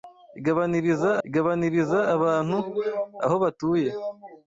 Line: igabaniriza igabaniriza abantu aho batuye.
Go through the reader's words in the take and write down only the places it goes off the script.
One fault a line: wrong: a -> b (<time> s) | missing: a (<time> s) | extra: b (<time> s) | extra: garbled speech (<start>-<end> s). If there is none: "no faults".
no faults